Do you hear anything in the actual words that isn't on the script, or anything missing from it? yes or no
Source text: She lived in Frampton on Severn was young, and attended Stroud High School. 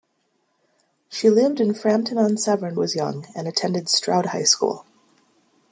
no